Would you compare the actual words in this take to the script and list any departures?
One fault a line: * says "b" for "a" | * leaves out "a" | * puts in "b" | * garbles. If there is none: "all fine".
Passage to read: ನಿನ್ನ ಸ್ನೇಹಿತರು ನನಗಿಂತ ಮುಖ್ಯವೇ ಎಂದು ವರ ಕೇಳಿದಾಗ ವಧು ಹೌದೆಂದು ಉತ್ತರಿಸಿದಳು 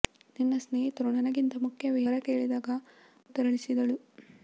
* leaves out "ಎಂದು"
* leaves out "ವಧು ಹೌದೆಂದು"